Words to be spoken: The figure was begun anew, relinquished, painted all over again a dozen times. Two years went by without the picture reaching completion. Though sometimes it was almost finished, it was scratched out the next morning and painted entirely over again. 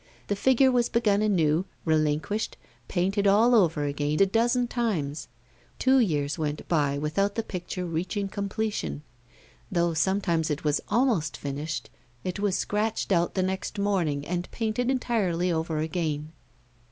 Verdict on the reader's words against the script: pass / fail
pass